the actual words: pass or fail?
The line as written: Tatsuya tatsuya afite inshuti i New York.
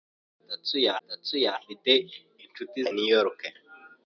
pass